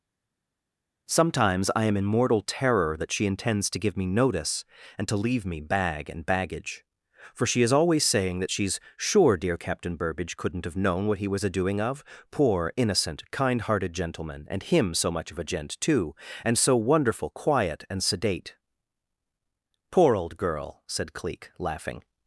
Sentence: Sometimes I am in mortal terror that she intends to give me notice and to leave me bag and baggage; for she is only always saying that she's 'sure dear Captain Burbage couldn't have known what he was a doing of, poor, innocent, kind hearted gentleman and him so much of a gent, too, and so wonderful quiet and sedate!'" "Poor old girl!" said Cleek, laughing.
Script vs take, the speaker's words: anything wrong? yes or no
yes